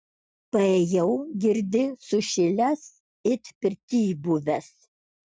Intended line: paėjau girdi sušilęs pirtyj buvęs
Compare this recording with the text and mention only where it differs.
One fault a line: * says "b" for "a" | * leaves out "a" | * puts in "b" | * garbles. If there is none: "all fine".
* puts in "it"